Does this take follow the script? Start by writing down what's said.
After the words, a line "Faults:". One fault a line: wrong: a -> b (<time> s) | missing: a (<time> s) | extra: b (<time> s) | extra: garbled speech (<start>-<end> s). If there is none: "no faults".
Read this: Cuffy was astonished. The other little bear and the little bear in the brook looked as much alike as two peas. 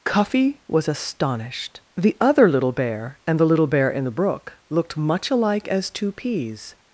Cuffy was astonished. The other little bear and the little bear in the brook looked much alike as two peas.
Faults:
missing: as (5.0 s)